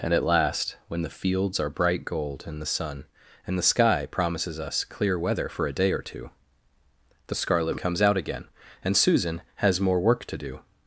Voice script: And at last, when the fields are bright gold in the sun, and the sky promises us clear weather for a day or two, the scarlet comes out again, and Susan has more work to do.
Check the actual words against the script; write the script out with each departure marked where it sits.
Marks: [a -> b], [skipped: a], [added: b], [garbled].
And at last, when the fields are bright gold in the sun, and the sky promises us clear weather for a day or two, the scarlet comes out again, and Susan has more work to do.